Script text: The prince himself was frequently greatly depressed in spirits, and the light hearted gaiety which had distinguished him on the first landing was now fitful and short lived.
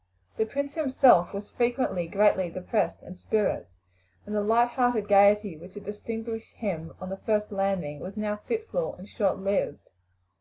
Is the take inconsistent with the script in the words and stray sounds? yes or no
no